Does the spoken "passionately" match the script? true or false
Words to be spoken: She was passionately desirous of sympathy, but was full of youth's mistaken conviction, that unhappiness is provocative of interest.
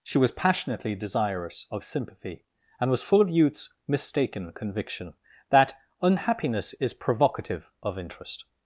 true